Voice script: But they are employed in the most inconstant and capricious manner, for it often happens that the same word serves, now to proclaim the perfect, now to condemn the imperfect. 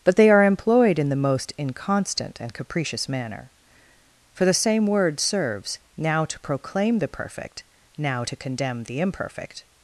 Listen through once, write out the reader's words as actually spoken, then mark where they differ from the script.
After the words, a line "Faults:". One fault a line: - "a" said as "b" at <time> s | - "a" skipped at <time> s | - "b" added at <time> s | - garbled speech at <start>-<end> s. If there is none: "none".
But they are employed in the most inconstant and capricious manner, for the same word serves, now to proclaim the perfect, now to condemn the imperfect.
Faults:
- "it often happens that" skipped at 4.5 s